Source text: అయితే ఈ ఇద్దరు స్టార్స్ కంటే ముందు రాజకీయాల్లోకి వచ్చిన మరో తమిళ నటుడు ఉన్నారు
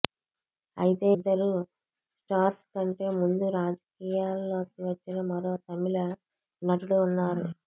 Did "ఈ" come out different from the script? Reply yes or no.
yes